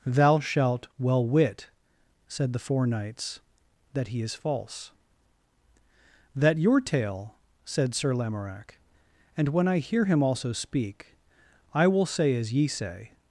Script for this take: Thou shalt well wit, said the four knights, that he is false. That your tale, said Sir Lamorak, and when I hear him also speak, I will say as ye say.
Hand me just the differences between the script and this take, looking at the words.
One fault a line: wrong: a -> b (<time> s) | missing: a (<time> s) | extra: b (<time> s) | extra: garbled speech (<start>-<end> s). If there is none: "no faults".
no faults